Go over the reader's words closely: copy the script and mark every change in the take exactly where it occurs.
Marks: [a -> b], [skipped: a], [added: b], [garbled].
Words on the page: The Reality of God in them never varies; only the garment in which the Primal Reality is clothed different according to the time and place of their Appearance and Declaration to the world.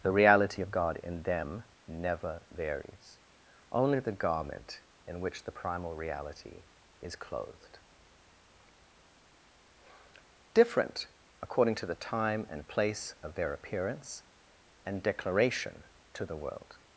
The Reality of God in them never varies; only the garment in which the Primal Reality is clothed different according to the time and place of their Appearance and Declaration to the world.